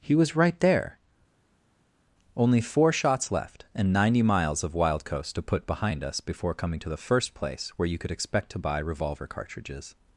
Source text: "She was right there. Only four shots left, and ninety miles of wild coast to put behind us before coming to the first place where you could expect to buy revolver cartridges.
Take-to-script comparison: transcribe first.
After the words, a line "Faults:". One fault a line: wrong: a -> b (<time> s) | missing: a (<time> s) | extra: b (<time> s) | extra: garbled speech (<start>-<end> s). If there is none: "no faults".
"He was right there. Only four shots left, and ninety miles of wild coast to put behind us before coming to the first place where you could expect to buy revolver cartridges.
Faults:
wrong: She -> He (0.0 s)